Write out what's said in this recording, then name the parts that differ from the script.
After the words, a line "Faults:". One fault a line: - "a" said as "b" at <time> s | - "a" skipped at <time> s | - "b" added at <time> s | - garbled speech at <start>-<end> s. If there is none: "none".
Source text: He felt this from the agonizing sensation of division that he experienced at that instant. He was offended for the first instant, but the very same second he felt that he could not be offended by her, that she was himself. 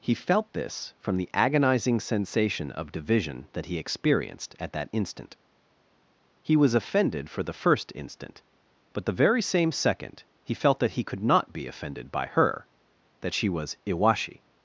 He felt this from the agonizing sensation of division that he experienced at that instant. He was offended for the first instant, but the very same second he felt that he could not be offended by her, that she was iwashi.
Faults:
- "himself" said as "iwashi" at 13.9 s